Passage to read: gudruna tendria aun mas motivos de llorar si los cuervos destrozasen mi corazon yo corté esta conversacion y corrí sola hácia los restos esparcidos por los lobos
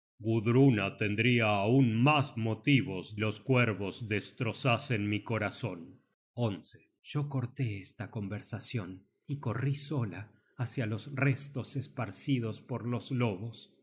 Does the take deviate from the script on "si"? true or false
true